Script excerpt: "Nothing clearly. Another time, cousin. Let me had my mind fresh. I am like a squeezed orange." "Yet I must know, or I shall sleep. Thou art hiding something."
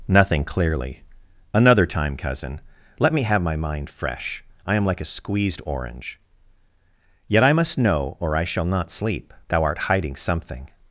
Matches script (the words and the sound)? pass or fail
fail